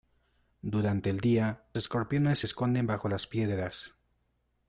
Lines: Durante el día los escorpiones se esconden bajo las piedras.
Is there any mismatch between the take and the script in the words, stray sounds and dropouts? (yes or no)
yes